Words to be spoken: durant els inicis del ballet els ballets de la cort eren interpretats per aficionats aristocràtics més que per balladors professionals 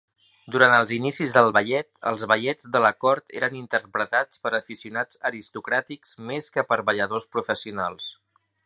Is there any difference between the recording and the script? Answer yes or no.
no